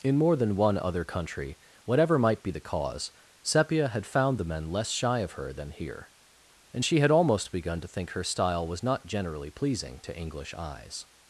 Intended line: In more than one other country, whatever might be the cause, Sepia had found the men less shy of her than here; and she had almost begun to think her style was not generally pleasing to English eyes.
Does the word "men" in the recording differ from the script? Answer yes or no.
no